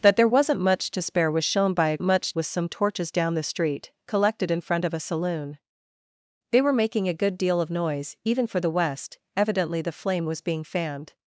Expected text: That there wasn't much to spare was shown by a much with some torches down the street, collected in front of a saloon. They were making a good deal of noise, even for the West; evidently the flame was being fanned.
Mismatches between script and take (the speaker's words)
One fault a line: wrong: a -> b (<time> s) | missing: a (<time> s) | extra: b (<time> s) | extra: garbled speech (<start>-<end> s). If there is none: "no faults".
no faults